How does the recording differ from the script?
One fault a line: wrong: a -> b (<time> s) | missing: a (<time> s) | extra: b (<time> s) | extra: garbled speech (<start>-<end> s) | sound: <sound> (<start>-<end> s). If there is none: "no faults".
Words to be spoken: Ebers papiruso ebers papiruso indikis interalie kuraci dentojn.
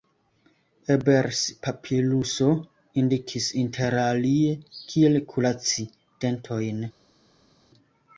missing: ebers papiruso (2.5 s)
extra: kiel (5.0 s)